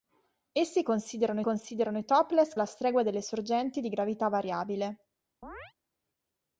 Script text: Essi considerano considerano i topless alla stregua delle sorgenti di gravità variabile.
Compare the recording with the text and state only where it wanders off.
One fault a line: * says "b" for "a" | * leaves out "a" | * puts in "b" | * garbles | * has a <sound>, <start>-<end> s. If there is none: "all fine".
* has a chirp, 5.4-5.7 s